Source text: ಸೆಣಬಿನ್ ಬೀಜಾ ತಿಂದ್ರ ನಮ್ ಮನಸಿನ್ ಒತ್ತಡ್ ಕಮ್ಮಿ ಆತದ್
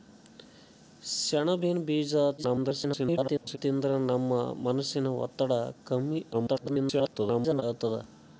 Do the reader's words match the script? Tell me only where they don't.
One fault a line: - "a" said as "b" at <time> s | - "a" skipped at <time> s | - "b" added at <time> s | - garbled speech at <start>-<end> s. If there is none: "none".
- garbled speech at 2.4-3.6 s
- garbled speech at 6.3-7.6 s